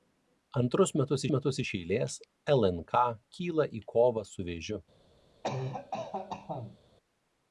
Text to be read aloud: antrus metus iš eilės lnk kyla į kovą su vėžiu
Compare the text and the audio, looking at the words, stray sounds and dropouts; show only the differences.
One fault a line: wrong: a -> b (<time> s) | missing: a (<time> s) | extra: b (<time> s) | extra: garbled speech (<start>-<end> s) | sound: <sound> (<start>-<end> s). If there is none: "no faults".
extra: metus (1.4 s)
sound: cough (5.4-6.8 s)